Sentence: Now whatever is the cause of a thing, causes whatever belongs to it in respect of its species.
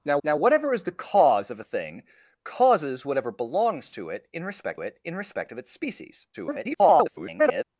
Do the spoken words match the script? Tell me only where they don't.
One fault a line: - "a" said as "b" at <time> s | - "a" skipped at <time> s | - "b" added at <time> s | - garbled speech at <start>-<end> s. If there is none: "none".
- "now" added at 0.2 s
- "it in respect" added at 4.8 s
- garbled speech at 6.3-7.6 s